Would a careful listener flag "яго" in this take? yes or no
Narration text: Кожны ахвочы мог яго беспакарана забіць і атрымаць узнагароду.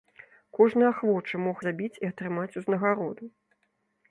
yes